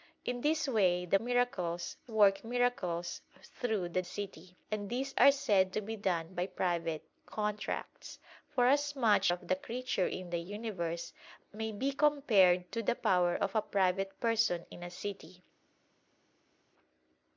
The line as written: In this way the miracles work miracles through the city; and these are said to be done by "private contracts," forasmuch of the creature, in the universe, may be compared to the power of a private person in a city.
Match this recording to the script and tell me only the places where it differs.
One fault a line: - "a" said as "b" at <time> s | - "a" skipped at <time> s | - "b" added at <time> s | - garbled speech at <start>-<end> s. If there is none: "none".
none